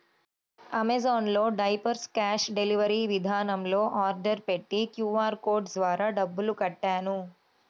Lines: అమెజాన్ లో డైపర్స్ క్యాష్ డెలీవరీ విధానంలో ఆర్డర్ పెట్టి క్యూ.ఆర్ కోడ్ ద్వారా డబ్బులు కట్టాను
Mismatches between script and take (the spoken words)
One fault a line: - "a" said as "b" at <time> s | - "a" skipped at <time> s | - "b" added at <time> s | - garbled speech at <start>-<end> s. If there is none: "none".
none